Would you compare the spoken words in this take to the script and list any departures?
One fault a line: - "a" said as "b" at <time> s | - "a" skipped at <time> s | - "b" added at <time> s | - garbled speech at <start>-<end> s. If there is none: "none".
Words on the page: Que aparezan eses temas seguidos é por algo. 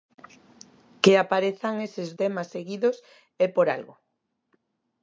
none